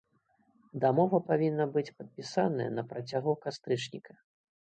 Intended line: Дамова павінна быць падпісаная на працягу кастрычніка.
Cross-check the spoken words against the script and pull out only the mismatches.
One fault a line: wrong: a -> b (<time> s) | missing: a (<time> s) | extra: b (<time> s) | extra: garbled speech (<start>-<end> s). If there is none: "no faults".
no faults